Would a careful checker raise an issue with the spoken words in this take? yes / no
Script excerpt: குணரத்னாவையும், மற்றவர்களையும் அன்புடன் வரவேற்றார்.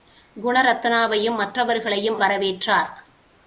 yes